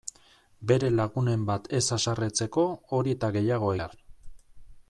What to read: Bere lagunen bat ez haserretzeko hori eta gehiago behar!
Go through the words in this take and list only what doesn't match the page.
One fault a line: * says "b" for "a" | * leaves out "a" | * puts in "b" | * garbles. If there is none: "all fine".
all fine